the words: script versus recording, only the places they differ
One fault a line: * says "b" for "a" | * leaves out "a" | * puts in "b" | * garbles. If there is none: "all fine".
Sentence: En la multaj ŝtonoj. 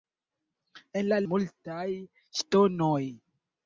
all fine